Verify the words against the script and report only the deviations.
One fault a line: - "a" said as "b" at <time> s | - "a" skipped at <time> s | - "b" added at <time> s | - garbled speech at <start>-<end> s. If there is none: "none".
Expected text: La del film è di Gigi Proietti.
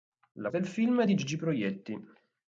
none